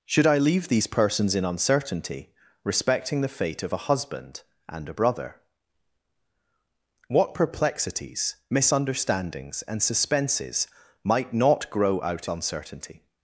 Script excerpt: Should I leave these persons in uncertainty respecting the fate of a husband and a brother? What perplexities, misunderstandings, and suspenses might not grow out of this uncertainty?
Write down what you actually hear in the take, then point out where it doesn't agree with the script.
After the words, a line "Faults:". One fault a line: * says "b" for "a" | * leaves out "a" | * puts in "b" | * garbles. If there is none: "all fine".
Should I leave these persons in uncertainty respecting the fate of a husband and a brother? What perplexities, misunderstandings, and suspenses might not grow out uncertainty?
Faults:
* leaves out "of this"